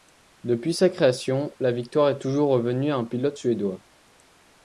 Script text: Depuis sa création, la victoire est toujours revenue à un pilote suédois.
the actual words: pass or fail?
pass